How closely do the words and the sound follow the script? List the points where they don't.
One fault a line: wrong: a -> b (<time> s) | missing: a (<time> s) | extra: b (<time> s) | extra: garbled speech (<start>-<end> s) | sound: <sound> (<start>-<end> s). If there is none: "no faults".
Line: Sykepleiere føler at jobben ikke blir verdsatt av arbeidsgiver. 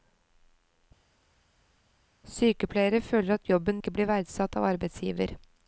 no faults